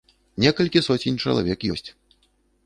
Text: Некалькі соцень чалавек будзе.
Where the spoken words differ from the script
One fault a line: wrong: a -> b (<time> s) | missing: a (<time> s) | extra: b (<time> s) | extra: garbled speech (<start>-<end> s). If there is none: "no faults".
wrong: будзе -> ёсць (1.7 s)